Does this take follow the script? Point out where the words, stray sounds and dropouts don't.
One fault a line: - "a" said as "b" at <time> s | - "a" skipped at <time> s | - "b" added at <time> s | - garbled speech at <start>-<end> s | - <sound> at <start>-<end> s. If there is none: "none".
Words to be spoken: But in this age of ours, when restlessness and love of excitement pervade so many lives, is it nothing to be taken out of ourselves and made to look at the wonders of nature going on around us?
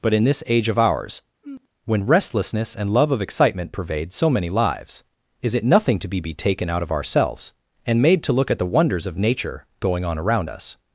- sigh at 1.4-1.7 s
- "be" added at 6.2 s